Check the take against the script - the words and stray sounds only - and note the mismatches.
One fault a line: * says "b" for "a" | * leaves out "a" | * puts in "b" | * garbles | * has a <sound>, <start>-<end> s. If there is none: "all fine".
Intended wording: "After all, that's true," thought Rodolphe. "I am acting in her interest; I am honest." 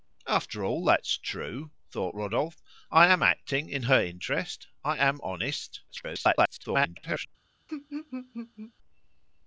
* garbles
* has a laugh, 7.7-8.7 s